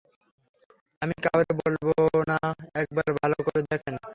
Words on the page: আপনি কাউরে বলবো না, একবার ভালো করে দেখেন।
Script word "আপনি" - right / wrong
wrong